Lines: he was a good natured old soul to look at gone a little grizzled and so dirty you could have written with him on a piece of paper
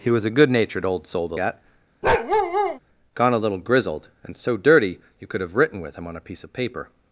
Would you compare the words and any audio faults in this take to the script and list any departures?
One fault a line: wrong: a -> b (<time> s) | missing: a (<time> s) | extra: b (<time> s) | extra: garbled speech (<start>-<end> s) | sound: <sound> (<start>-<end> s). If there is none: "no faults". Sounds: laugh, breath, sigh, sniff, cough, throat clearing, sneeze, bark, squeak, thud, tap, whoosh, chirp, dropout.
missing: look (1.4 s)
sound: bark (2.0-2.8 s)